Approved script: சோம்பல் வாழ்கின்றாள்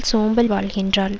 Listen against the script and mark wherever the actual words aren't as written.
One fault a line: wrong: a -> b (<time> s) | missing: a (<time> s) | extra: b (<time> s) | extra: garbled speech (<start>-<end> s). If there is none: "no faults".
no faults